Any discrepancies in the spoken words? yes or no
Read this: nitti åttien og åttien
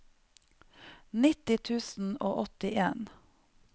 yes